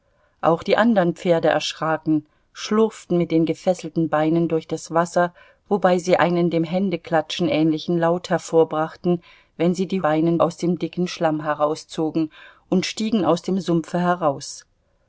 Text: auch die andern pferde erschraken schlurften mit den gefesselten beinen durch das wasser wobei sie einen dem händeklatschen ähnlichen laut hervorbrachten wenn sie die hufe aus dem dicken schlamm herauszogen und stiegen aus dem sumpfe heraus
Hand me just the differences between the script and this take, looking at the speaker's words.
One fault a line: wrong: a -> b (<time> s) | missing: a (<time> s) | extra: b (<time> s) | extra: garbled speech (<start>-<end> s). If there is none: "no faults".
wrong: hufe -> beinen (10.0 s)